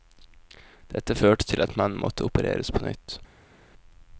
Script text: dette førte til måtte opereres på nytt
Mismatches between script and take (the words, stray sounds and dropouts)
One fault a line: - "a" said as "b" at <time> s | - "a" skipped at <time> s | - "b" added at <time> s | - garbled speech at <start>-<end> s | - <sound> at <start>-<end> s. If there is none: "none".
- "at mannen" added at 1.6 s